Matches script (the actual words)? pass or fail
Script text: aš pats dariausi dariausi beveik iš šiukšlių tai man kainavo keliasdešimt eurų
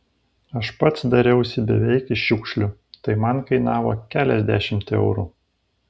fail